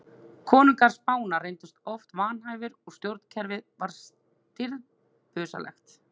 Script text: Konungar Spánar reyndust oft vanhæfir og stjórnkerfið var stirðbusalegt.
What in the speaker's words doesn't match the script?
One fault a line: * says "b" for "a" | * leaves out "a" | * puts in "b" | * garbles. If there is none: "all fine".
all fine